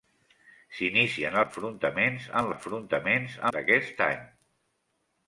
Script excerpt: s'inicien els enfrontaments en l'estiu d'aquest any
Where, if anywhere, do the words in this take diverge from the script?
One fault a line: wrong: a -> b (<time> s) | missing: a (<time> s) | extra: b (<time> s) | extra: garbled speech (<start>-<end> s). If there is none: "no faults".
missing: els (1.4 s)
wrong: l'estiu -> enfrontaments (2.5 s)